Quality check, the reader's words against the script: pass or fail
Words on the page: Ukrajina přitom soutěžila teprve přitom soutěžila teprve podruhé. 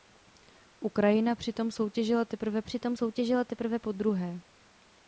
pass